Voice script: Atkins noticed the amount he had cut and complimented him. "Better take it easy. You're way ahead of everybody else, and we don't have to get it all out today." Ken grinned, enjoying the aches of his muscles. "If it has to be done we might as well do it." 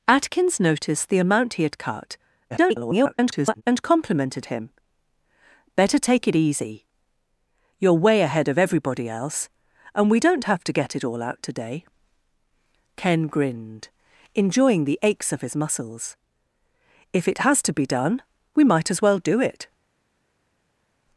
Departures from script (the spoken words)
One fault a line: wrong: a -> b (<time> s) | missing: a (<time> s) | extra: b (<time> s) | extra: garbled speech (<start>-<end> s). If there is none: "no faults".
extra: garbled speech (2.5-3.6 s)